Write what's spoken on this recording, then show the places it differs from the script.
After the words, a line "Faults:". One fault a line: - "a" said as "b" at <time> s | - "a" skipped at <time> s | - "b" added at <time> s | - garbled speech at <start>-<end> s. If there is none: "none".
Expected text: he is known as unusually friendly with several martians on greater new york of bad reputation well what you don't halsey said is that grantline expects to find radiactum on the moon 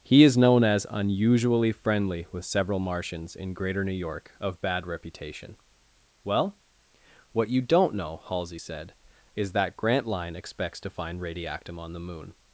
he is known as unusually friendly with several martians in greater new york of bad reputation well what you don't know halsey said is that grantline expects to find radiactum on the moon
Faults:
- "on" said as "in" at 3.4 s
- "know" added at 8.0 s